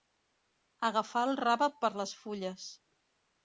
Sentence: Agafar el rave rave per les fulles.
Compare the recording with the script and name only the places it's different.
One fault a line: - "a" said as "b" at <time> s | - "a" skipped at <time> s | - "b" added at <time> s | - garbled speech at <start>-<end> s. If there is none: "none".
- "rave" skipped at 1.7 s